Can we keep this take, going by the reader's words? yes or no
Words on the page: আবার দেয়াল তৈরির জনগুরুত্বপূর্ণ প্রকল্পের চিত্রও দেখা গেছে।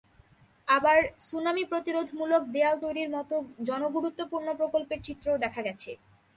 no